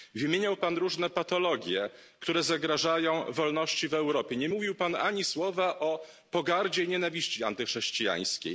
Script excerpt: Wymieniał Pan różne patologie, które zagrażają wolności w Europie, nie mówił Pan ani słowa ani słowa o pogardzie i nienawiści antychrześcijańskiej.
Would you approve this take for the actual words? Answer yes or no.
no